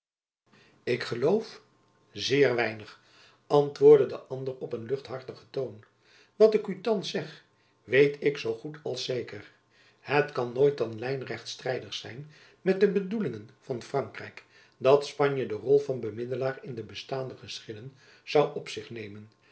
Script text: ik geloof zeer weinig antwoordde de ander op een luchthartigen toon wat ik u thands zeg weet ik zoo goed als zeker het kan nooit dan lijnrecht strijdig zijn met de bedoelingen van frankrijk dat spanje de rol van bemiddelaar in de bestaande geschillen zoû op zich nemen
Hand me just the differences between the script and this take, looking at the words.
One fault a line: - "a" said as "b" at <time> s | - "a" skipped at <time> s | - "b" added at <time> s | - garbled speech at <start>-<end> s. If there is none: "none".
none